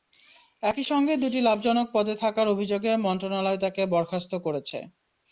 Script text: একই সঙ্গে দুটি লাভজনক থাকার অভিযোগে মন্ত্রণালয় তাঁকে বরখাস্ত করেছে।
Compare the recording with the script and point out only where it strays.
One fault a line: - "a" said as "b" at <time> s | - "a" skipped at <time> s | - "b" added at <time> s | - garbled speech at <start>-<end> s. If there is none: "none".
- "পদে" added at 1.9 s